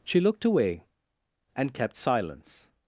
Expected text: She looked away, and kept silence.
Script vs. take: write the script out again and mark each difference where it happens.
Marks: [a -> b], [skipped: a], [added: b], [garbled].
She looked away, and kept silence.